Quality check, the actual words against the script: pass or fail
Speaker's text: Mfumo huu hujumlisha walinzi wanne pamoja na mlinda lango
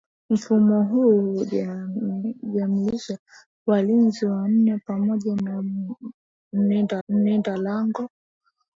fail